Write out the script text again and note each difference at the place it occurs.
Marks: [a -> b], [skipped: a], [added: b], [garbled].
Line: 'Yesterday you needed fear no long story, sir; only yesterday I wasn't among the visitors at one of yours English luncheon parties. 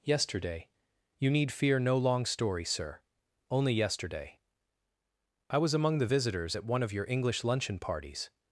'Yesterday you [needed -> need] fear no long story, sir; only yesterday I [wasn't -> was] among the visitors at one of [yours -> your] English luncheon parties.